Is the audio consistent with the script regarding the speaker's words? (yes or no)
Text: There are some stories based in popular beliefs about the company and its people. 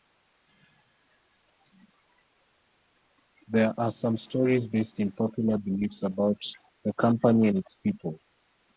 yes